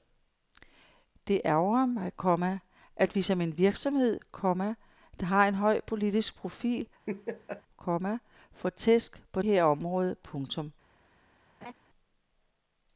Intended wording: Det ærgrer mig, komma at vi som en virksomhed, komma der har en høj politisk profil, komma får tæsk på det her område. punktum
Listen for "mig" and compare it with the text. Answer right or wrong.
right